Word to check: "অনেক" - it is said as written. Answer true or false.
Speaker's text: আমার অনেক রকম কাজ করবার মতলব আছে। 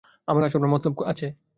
false